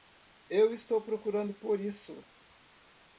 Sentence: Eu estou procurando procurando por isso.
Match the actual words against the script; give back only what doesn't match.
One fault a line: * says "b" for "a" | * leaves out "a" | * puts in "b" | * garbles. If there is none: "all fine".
* leaves out "procurando"